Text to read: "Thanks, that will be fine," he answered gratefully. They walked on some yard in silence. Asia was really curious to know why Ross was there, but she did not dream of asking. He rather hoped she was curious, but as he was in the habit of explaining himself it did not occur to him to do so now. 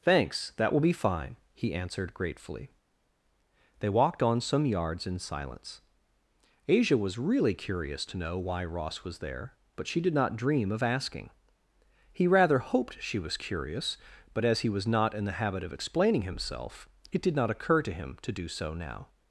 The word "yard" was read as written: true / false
false